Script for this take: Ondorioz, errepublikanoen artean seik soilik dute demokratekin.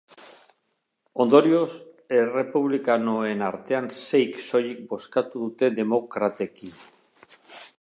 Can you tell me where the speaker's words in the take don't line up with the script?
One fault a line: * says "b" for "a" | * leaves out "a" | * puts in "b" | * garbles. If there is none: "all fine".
* puts in "bozkatu"